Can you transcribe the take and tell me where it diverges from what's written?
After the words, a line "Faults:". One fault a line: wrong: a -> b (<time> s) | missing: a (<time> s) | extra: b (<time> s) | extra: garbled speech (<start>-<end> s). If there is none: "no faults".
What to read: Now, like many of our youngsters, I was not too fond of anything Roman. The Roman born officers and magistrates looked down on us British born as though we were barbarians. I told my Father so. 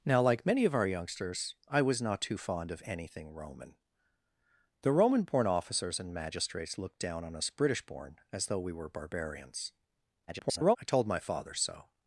Now, like many of our youngsters, I was not too fond of anything Roman. The Roman born officers and magistrates looked down on us British born as though we were barbarians. [garbled] I told my Father so.
Faults:
extra: garbled speech (10.3-10.8 s)